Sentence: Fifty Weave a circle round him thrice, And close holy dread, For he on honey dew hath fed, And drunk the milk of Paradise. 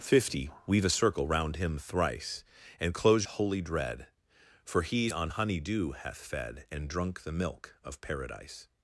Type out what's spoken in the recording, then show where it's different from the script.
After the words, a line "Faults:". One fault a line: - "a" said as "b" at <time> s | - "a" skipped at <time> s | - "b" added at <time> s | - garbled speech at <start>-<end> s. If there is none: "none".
Fifty Weave a circle round him thrice, And close holy dread, For he on honey dew hath fed, And drunk the milk of Paradise.
Faults:
none